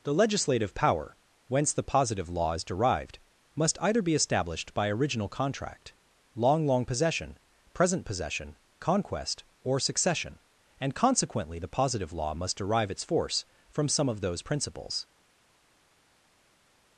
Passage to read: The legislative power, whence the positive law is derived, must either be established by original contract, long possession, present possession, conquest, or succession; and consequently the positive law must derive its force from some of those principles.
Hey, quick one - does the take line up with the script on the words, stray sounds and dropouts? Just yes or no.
no